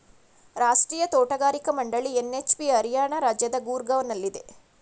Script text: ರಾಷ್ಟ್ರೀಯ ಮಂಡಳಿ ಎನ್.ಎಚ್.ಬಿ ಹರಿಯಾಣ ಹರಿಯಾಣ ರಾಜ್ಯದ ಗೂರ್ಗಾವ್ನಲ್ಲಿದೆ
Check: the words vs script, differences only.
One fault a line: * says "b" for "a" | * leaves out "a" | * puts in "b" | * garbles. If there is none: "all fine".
* puts in "ತೋಟಗಾರಿಕಾ"
* leaves out "ಹರಿಯಾಣ"